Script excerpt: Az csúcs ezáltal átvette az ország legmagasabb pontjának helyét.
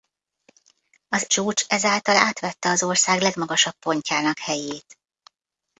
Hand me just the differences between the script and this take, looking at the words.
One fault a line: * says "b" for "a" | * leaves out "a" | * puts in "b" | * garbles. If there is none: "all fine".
all fine